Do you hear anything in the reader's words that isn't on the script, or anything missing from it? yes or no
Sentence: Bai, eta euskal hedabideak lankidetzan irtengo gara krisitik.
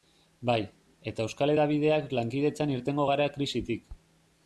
no